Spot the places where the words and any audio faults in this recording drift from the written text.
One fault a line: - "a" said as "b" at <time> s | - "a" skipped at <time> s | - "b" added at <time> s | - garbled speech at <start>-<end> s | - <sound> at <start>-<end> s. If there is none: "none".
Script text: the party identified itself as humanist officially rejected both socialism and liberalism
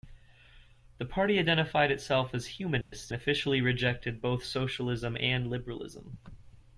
- dropout at 2.8-2.9 s